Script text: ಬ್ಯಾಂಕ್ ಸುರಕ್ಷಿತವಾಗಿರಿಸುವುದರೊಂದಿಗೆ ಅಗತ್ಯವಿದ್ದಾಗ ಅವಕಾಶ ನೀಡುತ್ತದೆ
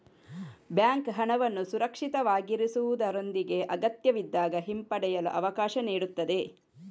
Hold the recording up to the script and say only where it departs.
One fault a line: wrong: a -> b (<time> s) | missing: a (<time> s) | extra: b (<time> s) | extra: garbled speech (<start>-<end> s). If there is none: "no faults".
extra: ಹಣವನ್ನು (1.1 s)
extra: ಹಿಂಪಡೆಯಲು (4.7 s)